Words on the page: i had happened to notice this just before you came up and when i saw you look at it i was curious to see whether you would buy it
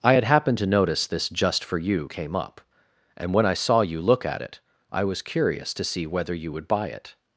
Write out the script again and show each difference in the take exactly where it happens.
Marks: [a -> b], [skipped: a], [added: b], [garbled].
i had happened to notice this just [before -> for] you came up and when i saw you look at it i was curious to see whether you would buy it